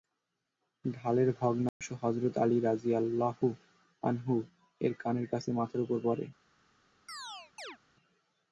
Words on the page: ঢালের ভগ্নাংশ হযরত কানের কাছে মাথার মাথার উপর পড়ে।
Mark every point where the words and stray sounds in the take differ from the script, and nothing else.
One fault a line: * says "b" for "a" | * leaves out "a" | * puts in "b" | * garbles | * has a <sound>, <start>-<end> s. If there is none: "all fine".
* has a dropout, 1.7-1.8 s
* puts in "আলী রাযিয়াল্লাহু আনহু-এর"
* leaves out "মাথার"
* has a chirp, 7.1-7.8 s